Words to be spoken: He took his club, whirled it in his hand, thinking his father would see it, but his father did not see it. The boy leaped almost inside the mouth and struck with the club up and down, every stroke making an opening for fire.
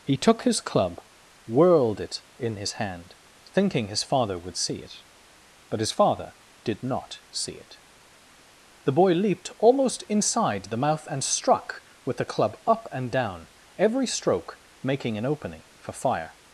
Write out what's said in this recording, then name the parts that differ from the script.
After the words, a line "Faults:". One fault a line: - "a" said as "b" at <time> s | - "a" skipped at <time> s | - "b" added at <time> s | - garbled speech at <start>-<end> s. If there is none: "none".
He took his club, whirled it in his hand, thinking his father would see it, but his father did not see it. The boy leaped almost inside the mouth and struck with the club up and down, every stroke making an opening for fire.
Faults:
none